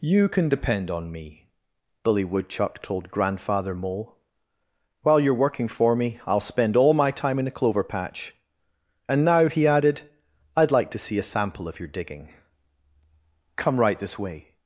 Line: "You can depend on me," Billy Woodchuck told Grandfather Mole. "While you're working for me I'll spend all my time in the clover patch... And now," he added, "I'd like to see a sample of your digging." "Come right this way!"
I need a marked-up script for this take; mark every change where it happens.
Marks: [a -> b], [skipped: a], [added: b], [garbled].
"You can depend on me," Billy Woodchuck told Grandfather Mole. "While you're working for me I'll spend all my time in the clover patch... And now," he added, "I'd like to see a sample of your digging." "Come right this way!"